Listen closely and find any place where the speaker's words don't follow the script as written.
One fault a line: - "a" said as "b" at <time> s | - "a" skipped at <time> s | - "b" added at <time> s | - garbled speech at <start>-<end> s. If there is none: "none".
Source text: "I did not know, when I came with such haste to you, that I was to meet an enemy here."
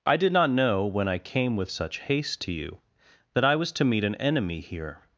none